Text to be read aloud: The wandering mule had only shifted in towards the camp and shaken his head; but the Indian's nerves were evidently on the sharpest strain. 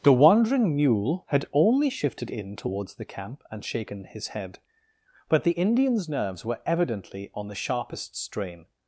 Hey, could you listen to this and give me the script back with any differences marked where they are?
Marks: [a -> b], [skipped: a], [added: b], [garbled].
The wandering mule had only shifted in towards the camp and shaken his head; but the Indian's nerves were evidently on the sharpest strain.